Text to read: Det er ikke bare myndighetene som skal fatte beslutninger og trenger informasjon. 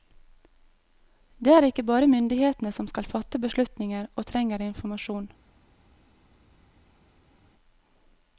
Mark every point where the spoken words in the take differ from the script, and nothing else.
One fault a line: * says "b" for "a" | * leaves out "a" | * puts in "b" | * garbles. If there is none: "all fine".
all fine